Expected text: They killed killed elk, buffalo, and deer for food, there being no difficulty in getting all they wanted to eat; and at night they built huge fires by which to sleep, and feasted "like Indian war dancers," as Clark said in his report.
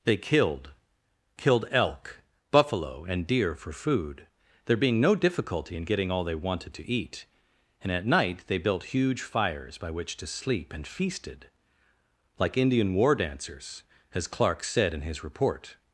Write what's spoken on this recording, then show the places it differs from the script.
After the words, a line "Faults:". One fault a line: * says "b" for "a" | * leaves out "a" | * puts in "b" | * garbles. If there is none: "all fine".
They killed killed elk, buffalo, and deer for food, there being no difficulty in getting all they wanted to eat; and at night they built huge fires by which to sleep, and feasted "like Indian war dancers," as Clark said in his report.
Faults:
all fine